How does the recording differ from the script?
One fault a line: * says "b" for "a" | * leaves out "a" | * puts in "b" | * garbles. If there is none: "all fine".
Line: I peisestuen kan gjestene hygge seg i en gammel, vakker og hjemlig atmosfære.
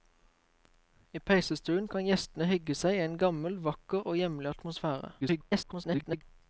* garbles